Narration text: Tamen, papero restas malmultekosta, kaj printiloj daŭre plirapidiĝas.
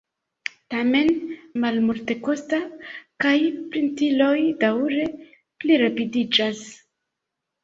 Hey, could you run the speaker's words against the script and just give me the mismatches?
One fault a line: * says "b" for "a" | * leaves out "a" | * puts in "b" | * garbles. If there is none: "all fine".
* leaves out "papero restas"